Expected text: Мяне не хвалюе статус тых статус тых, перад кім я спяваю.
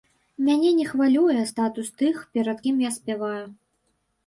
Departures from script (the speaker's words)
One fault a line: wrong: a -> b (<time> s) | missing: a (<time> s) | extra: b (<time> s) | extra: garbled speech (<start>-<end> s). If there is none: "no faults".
missing: статус тых (2.2 s)